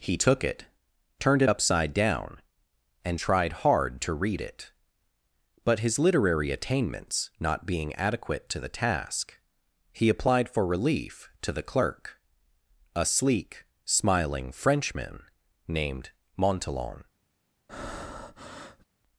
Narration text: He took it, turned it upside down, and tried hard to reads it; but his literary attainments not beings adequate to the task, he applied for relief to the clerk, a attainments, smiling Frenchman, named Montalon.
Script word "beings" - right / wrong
wrong